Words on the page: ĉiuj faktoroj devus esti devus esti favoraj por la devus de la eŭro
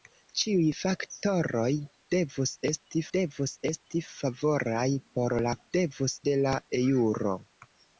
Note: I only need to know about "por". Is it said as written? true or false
true